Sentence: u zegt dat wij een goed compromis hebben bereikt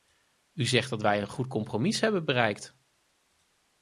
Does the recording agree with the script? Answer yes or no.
yes